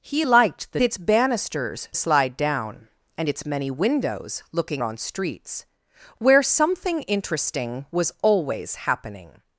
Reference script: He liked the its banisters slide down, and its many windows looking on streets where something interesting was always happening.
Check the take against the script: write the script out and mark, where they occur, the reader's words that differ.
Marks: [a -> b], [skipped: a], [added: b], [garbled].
He liked the its banisters slide down, and its many windows looking on streets where something interesting was always happening.